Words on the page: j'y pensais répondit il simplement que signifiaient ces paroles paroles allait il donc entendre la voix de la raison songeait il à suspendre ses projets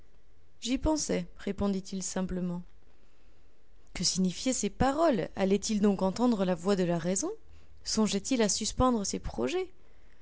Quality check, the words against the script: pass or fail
fail